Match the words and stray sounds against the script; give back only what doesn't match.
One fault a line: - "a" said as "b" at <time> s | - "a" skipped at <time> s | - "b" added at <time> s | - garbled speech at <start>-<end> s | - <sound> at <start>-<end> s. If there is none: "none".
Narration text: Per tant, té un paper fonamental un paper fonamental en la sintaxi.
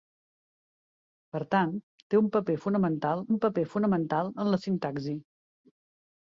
none